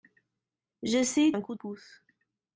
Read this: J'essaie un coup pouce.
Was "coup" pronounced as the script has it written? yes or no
yes